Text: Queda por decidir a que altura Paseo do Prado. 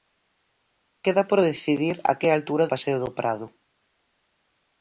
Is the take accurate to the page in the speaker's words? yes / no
yes